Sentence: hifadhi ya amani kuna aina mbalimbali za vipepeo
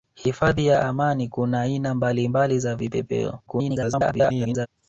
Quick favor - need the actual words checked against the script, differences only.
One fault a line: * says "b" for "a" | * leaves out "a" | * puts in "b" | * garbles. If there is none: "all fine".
* garbles